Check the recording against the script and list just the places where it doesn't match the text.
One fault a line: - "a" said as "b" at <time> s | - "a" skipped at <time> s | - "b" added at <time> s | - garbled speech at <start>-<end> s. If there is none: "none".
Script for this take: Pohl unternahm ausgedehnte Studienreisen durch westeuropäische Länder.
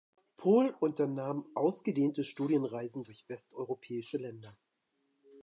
none